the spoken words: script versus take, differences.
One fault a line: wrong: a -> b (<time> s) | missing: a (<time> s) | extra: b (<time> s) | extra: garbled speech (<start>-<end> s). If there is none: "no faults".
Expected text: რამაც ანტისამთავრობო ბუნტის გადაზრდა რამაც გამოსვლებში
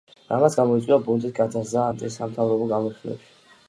wrong: ანტისამთავრობო -> გამოიწვია (0.6 s)
wrong: რამაც -> ანტისამთავრობო (1.9 s)